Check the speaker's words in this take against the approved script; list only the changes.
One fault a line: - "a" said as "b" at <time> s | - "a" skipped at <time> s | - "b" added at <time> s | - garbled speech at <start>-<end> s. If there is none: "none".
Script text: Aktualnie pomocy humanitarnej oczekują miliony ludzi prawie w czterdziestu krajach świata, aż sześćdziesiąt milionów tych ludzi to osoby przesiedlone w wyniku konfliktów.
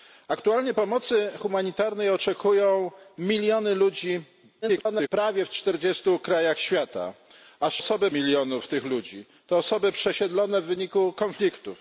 - garbled speech at 4.6-5.1 s
- "sześćdziesiąt" said as "osoby" at 7.8 s